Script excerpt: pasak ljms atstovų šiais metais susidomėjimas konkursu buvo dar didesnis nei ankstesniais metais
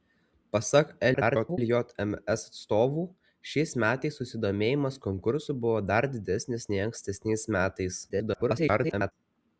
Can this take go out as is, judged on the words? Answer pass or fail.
fail